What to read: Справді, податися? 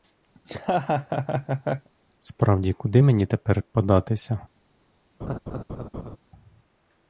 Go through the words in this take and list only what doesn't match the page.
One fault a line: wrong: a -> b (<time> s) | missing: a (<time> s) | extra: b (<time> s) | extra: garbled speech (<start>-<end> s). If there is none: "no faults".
extra: куди мені тепер (2.7 s)